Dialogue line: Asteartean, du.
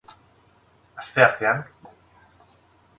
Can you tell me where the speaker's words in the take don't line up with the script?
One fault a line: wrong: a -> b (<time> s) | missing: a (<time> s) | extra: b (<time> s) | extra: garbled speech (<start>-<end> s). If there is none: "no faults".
no faults